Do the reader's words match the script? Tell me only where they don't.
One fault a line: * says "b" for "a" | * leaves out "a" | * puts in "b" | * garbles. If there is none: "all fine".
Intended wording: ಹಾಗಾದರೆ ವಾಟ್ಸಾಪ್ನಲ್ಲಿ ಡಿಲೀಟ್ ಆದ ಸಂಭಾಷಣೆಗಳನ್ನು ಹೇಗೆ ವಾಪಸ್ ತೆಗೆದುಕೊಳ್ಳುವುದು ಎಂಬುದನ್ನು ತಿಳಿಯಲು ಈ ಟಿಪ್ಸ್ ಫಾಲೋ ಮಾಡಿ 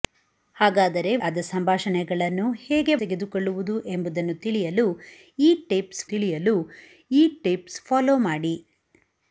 * leaves out "ವಾಟ್ಸಾಪ್ನಲ್ಲಿ ಡಿಲೀಟ್"
* leaves out "ವಾಪಸ್"
* puts in "ತಿಳಿಯಲು ಈ ಟಿಪ್ಸ್"